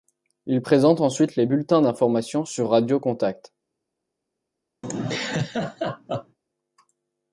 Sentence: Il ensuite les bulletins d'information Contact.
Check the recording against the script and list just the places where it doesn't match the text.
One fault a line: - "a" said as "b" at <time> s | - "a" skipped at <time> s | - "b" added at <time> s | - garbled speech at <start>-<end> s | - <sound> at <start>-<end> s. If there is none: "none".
- "présente" added at 0.6 s
- "sur Radio" added at 2.4 s
- laugh at 4.8-6.4 s